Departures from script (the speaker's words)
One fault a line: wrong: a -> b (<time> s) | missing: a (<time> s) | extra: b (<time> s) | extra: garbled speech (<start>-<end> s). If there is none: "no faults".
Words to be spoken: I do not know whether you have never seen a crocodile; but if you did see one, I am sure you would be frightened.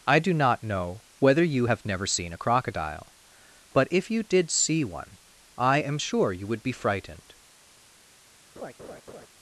no faults